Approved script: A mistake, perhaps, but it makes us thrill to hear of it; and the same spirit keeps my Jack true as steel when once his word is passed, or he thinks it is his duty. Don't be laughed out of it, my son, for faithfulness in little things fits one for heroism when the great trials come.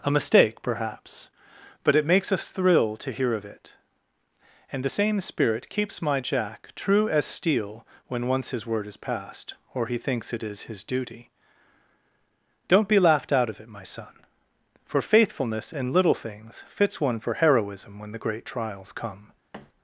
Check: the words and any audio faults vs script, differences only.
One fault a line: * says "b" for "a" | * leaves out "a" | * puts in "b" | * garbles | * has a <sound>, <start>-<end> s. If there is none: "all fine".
* has a thud, 19.5-19.7 s